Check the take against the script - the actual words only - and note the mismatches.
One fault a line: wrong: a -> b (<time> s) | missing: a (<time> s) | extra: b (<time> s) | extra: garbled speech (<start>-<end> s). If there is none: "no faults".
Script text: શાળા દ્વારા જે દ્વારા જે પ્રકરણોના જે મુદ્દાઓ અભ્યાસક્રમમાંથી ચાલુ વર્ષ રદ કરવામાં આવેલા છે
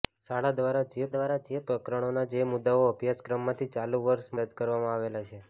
no faults